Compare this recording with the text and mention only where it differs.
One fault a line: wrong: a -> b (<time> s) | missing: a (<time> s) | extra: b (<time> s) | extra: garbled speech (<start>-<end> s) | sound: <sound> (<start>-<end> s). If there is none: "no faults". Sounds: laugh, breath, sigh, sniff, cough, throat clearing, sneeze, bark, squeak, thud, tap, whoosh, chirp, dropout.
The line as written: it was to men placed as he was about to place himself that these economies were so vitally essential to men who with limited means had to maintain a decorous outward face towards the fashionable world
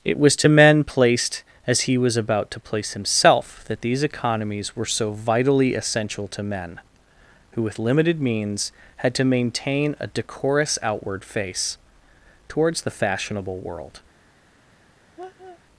sound: laugh (15.2-15.6 s)